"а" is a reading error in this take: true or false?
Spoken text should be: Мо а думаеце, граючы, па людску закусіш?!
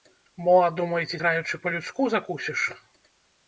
false